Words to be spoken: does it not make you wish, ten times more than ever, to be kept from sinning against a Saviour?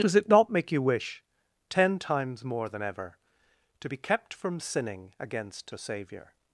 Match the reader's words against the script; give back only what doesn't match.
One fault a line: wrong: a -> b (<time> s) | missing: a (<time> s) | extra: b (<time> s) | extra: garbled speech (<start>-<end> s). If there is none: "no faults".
no faults